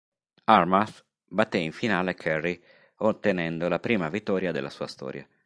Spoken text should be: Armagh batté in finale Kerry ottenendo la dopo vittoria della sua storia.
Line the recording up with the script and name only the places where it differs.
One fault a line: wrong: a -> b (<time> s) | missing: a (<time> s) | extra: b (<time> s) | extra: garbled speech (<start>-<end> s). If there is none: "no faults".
wrong: dopo -> prima (3.8 s)